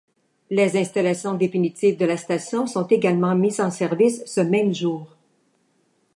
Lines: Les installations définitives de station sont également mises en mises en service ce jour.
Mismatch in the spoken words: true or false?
true